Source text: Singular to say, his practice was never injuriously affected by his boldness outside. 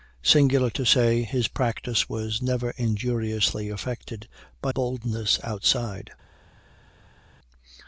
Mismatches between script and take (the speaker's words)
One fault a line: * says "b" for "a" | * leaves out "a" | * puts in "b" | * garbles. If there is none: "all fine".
* leaves out "his"